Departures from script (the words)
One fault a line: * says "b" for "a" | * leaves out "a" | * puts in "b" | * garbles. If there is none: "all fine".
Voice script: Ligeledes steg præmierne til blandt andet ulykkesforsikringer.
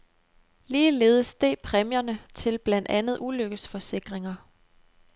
all fine